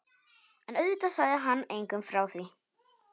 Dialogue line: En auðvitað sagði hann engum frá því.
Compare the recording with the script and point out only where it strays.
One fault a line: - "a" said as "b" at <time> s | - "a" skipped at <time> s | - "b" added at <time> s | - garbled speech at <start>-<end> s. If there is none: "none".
none